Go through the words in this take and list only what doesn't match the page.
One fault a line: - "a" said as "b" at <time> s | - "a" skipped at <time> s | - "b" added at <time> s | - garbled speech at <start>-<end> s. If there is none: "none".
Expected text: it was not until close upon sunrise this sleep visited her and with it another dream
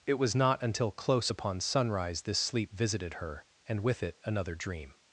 none